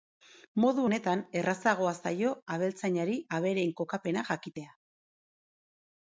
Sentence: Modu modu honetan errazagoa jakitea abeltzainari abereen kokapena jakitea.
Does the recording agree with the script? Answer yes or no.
no